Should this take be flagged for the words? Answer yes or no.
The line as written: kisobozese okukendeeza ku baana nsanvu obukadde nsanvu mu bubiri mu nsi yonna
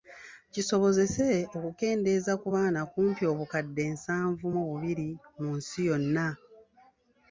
yes